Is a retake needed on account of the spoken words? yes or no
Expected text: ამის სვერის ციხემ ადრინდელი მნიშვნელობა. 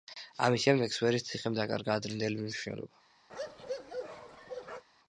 yes